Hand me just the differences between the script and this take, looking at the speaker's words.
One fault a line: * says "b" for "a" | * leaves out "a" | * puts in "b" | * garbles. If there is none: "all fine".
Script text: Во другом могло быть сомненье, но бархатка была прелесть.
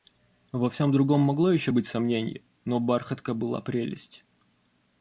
* puts in "всем"
* puts in "еще"